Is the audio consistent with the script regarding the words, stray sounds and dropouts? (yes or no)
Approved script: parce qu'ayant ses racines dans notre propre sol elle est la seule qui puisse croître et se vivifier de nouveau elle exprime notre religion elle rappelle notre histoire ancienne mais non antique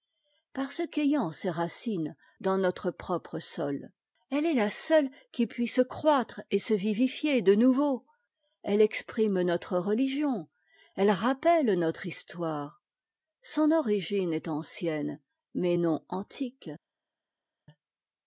no